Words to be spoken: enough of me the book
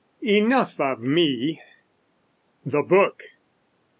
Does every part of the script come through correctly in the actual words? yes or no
yes